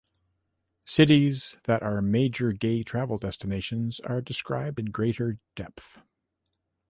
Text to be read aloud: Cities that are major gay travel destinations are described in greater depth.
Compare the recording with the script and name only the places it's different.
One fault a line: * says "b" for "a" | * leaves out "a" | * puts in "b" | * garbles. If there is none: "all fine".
all fine